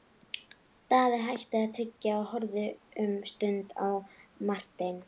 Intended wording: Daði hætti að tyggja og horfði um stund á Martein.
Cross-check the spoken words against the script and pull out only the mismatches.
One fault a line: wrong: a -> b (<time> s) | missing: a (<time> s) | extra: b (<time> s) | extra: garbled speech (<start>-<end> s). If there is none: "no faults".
no faults